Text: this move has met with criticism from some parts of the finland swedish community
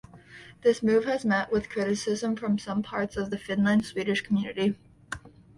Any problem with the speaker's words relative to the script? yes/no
no